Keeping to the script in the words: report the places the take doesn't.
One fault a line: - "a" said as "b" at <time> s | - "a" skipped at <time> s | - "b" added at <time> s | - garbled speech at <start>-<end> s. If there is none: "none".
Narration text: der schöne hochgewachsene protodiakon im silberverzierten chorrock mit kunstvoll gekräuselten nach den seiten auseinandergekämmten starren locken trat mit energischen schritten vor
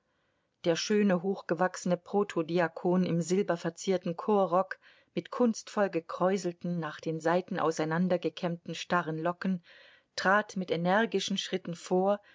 none